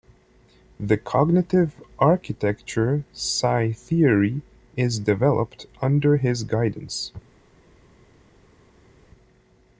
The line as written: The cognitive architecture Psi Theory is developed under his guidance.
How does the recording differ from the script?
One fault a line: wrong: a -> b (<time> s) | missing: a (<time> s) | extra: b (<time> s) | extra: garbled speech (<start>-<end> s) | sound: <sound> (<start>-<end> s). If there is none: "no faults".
no faults